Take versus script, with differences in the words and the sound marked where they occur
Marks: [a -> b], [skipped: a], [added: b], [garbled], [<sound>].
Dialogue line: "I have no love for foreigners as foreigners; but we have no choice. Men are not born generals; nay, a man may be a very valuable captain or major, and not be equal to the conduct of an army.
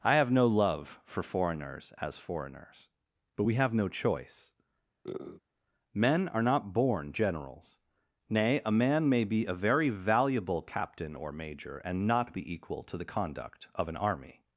"I have no love for foreigners as foreigners; but we have no choice. [sniff] Men are not born generals; nay, a man may be a very valuable captain or major, and not be equal to the conduct of an army.